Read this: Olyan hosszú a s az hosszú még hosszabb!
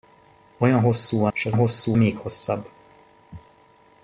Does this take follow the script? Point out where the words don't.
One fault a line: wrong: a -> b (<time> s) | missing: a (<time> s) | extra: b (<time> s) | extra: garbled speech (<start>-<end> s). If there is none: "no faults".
no faults